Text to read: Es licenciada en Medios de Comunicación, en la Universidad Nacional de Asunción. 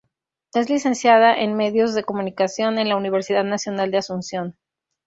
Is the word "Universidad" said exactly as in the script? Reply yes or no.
yes